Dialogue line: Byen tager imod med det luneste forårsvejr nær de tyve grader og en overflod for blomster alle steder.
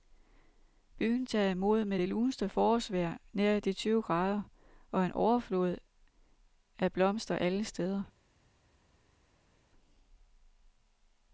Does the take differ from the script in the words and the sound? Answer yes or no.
yes